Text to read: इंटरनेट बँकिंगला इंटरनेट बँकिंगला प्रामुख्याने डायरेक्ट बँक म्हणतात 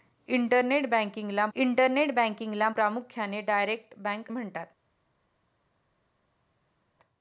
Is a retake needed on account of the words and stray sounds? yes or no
no